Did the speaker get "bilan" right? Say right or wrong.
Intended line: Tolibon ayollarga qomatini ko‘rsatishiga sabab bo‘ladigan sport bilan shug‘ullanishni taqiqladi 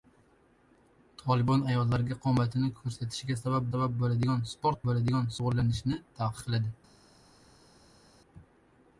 wrong